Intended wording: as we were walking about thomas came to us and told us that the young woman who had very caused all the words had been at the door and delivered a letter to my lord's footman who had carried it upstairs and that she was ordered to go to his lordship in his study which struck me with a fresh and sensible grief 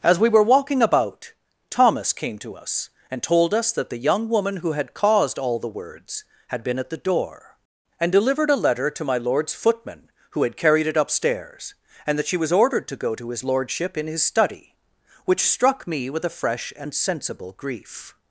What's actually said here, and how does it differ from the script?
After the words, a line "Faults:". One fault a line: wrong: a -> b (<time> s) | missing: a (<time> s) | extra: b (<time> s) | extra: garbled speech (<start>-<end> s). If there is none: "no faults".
as we were walking about thomas came to us and told us that the young woman who had caused all the words had been at the door and delivered a letter to my lord's footman who had carried it upstairs and that she was ordered to go to his lordship in his study which struck me with a fresh and sensible grief
Faults:
missing: very (5.0 s)